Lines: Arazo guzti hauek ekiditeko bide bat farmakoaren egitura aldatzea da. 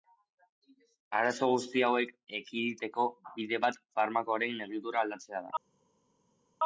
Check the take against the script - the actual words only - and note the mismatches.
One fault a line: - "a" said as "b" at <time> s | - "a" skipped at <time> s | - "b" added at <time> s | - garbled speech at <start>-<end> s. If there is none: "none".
none